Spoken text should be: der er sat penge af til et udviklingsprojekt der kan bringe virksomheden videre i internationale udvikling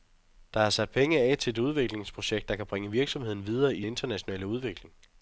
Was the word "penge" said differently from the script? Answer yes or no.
no